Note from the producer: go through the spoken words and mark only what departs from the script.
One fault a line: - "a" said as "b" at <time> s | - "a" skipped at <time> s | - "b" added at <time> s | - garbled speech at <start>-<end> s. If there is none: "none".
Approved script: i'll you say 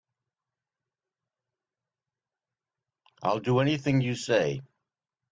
- "do anything" added at 3.4 s